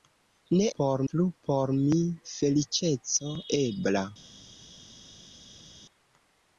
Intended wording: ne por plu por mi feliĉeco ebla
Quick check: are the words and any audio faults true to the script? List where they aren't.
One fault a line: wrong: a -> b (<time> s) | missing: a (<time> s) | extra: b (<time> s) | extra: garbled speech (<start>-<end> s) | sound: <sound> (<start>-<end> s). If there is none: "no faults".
no faults